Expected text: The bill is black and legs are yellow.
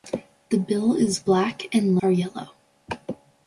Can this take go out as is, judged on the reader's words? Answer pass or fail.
fail